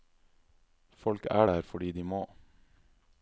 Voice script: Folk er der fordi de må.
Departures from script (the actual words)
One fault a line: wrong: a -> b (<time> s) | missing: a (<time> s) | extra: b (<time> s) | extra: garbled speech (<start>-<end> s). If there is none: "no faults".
no faults